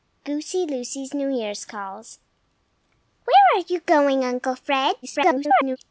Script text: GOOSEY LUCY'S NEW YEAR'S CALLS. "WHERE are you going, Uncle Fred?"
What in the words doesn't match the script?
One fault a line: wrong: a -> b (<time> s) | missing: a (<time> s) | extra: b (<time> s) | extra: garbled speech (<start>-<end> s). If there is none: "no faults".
extra: garbled speech (5.0-5.8 s)